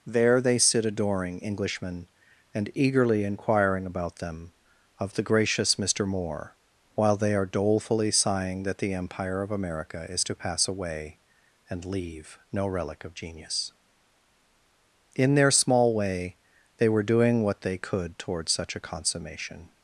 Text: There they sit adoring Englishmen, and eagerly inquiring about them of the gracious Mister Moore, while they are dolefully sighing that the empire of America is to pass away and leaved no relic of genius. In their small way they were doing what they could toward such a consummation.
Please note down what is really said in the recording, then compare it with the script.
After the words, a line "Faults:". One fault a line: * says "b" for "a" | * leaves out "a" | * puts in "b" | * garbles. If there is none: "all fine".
There they sit adoring Englishmen, and eagerly inquiring about them of the gracious Mister Moore, while they are dolefully sighing that the empire of America is to pass away and leave no relic of genius. In their small way they were doing what they could toward such a consummation.
Faults:
* says "leave" for "leaved"